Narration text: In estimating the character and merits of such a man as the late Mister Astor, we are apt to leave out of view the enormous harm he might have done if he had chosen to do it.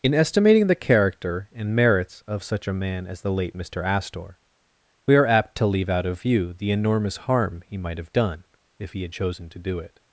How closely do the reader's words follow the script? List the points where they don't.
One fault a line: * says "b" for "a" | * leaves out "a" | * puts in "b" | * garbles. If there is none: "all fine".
all fine